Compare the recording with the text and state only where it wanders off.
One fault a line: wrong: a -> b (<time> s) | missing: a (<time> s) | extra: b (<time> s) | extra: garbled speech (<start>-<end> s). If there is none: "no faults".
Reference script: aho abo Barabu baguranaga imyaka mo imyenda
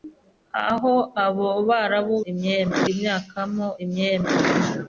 wrong: baguranaga -> imyenda (2.3 s)